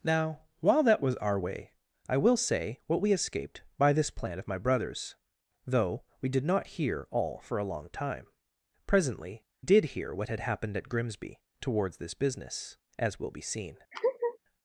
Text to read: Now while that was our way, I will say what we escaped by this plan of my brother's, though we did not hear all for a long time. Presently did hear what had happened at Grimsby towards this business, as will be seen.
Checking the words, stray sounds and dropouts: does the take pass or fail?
fail